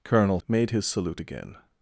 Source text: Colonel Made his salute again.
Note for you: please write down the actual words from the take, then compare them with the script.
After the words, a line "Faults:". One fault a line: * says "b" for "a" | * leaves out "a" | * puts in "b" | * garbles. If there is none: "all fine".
Colonel Made his salute again.
Faults:
all fine